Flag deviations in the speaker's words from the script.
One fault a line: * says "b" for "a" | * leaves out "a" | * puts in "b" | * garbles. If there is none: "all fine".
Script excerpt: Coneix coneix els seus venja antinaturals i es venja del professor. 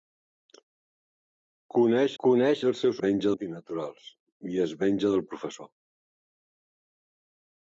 all fine